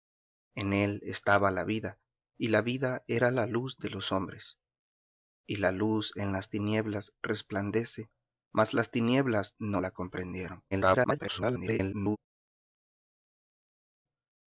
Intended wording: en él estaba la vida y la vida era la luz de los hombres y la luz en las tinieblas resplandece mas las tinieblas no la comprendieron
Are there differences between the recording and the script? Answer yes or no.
yes